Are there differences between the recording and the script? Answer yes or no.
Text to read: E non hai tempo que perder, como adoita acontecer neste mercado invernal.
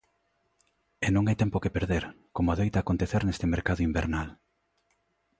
no